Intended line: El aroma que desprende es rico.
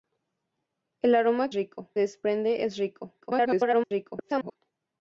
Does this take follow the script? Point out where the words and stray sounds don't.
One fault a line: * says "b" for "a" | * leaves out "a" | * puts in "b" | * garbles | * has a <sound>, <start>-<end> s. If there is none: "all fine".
* says "rico" for "que"
* garbles